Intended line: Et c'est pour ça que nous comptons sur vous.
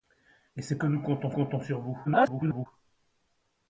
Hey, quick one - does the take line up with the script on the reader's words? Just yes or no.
no